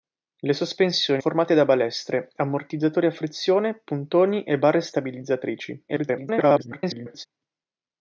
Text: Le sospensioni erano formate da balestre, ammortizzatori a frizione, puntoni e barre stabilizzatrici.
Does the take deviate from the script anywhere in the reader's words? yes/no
yes